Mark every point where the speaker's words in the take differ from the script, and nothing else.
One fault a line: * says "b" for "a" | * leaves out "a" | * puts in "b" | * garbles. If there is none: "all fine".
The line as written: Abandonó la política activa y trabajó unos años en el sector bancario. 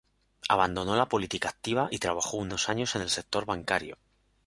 all fine